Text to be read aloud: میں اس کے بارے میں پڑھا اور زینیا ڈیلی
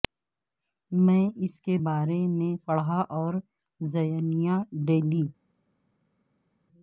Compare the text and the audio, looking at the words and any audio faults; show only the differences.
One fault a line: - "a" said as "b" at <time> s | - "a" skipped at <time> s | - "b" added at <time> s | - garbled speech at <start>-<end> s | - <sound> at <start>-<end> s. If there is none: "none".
none